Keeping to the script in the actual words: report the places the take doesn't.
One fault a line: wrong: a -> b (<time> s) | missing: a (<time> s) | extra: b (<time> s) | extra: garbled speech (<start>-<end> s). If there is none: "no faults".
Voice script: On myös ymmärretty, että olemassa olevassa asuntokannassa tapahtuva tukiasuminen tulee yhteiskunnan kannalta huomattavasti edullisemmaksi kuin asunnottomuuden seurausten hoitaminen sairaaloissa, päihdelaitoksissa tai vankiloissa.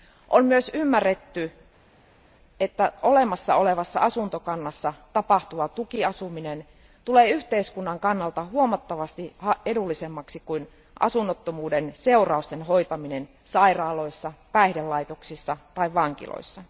no faults